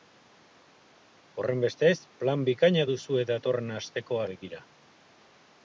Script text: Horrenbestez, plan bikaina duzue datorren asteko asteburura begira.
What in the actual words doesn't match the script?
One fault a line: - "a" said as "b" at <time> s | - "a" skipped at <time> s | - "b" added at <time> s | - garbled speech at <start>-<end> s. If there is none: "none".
- "asteburura" skipped at 4.2 s